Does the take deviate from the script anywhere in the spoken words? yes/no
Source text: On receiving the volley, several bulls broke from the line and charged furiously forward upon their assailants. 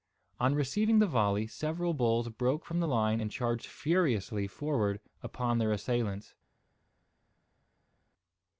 no